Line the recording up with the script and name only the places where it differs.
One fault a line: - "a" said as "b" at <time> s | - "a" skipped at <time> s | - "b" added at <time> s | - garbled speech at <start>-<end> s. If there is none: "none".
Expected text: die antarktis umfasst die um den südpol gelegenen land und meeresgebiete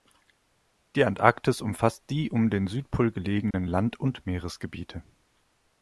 none